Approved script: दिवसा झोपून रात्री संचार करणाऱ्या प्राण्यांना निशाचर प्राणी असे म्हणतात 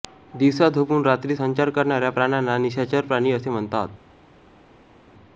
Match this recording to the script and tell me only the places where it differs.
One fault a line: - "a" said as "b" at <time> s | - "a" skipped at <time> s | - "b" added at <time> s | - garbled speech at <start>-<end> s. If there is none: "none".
none